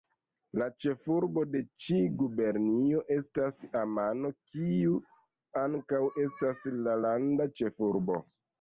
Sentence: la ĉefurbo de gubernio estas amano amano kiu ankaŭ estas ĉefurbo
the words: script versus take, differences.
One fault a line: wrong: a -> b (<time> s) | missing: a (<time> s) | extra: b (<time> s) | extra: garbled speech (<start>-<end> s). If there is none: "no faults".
extra: ĉi (1.9 s)
missing: amano (4.3 s)
extra: la landa (6.8 s)